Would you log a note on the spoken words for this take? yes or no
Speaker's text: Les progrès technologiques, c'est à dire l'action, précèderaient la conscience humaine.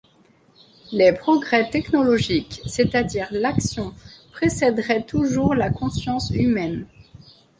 yes